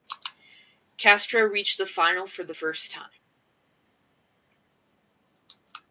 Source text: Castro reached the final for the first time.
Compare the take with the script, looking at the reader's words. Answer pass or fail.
pass